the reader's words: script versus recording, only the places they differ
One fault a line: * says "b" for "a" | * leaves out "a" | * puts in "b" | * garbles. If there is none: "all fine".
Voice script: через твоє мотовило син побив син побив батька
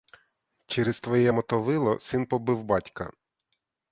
* leaves out "син побив"